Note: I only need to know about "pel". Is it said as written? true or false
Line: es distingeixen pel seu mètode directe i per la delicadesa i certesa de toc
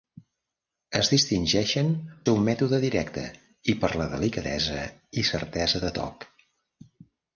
false